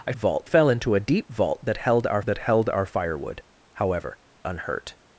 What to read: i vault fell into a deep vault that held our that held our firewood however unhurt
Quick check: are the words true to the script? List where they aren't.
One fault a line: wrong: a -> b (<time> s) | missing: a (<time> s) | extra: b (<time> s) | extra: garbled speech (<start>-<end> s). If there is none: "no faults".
no faults